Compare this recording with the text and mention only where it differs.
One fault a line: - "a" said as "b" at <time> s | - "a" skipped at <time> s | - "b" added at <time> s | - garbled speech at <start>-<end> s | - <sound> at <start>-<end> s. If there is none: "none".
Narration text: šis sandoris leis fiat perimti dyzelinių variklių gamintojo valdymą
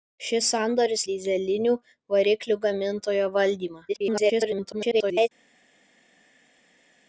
- "leis fiat perimti" skipped at 1.0 s
- garbled speech at 3.9-5.3 s